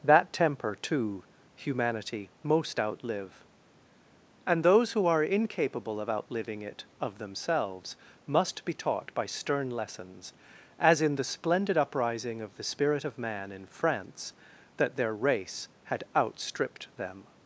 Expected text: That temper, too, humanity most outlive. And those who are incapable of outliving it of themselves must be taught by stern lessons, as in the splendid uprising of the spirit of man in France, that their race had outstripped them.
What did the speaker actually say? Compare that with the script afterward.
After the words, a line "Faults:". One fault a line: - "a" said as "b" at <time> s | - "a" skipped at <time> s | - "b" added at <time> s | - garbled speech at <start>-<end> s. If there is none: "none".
That temper, too, humanity most outlive. And those who are incapable of outliving it of themselves must be taught by stern lessons, as in the splendid uprising of the spirit of man in France, that their race had outstripped them.
Faults:
none